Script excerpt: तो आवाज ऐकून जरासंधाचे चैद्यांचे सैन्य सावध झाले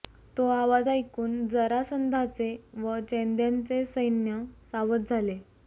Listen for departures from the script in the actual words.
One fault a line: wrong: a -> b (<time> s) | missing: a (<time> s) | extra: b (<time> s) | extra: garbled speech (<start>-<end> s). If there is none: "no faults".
extra: व (2.7 s)